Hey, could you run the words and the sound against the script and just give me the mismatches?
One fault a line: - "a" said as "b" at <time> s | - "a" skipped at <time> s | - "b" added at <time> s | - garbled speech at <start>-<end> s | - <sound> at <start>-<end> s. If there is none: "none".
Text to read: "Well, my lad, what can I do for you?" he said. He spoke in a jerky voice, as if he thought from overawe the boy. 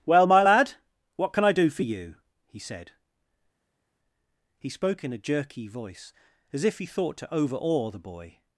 - "from" said as "to" at 7.2 s